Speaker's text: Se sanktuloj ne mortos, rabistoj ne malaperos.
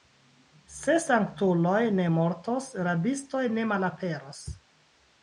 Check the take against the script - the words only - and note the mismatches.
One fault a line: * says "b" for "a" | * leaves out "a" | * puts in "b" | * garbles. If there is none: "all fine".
all fine